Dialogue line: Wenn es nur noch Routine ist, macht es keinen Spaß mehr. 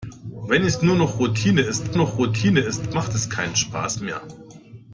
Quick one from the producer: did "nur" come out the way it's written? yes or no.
yes